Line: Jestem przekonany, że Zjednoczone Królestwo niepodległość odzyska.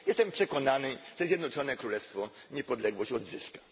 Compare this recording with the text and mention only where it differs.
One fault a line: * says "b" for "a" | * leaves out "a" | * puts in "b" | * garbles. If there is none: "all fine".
all fine